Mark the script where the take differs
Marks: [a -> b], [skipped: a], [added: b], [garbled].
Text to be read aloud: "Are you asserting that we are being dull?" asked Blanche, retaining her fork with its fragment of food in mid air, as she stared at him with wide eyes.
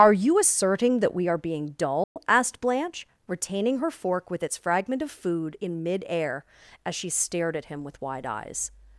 "Are you asserting that we are being dull?" asked Blanche, retaining her fork with its fragment of food in mid air, as she stared at him with wide eyes.